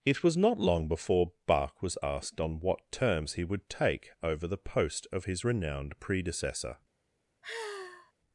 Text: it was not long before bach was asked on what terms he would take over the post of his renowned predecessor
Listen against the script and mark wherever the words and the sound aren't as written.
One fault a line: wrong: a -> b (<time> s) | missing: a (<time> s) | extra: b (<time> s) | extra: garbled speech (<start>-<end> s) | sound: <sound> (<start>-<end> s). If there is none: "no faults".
sound: sigh (7.4-8.1 s)